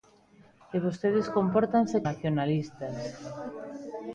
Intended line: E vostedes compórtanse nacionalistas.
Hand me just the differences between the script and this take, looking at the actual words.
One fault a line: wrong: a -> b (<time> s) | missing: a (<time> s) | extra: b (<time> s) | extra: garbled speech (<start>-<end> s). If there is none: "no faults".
no faults